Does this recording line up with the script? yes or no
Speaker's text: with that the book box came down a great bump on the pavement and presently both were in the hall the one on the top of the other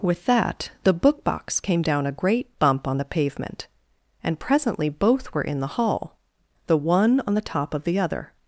yes